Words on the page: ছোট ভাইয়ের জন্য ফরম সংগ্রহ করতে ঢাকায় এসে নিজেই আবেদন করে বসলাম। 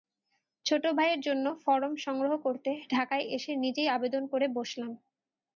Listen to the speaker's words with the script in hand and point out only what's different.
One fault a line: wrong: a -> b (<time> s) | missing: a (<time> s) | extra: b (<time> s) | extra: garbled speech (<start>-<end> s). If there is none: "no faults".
no faults